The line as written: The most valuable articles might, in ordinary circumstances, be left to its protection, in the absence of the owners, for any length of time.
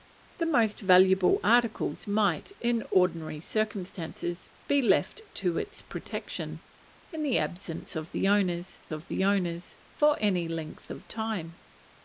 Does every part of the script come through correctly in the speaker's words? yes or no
no